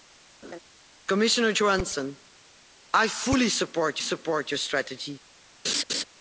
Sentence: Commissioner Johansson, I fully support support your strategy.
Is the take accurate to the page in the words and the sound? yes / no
no